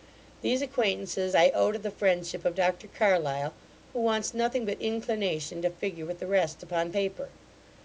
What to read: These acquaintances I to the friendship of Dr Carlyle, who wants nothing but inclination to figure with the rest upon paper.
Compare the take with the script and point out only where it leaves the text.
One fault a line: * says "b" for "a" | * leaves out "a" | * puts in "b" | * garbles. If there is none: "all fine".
* puts in "owe"